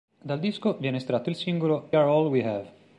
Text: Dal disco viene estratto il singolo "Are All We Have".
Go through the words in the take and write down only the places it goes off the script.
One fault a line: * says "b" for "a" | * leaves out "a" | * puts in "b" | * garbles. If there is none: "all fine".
all fine